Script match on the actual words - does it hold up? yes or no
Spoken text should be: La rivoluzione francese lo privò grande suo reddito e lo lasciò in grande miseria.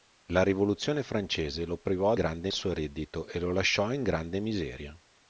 yes